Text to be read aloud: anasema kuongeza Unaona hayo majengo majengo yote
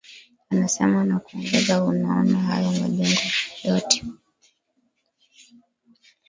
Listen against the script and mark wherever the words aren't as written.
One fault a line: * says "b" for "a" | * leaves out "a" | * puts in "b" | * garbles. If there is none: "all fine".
* puts in "na"
* leaves out "majengo"